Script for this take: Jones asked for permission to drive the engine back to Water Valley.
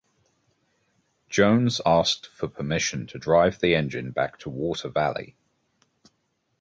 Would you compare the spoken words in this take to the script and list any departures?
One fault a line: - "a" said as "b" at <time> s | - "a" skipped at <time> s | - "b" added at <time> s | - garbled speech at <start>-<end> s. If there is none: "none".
none